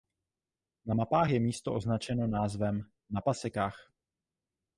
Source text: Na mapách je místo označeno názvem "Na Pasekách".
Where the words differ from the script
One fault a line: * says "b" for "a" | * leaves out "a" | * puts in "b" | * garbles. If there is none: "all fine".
all fine